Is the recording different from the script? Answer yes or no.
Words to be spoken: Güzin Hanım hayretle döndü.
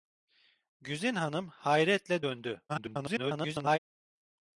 yes